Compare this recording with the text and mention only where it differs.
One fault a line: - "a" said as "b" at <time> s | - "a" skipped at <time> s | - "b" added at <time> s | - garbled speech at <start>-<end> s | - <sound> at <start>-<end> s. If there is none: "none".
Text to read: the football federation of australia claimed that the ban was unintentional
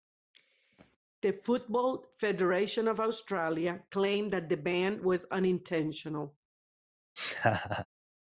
- laugh at 7.2-7.9 s